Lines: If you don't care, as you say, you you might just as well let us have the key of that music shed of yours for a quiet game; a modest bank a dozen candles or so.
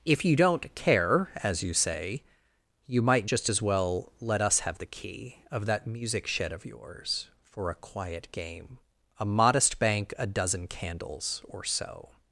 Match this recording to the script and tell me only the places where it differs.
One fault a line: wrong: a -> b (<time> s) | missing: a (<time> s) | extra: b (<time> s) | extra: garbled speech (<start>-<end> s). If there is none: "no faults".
missing: you (3.0 s)